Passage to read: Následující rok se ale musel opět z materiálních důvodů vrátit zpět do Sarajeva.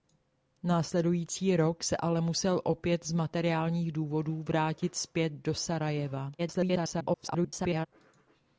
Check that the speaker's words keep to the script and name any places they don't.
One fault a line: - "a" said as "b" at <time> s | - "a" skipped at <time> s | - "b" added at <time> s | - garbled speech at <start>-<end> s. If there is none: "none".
- garbled speech at 6.4-7.9 s